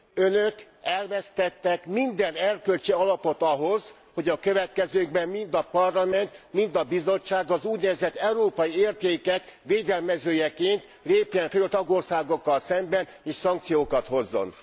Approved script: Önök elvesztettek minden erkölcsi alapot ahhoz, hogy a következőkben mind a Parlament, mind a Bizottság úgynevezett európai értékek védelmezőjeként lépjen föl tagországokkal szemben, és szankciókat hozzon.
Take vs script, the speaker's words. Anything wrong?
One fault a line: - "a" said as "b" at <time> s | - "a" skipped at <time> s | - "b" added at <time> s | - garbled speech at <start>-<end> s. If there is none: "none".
- "az" added at 7.5 s